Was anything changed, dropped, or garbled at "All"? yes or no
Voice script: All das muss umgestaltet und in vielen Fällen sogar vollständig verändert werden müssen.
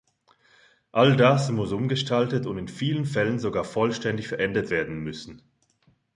no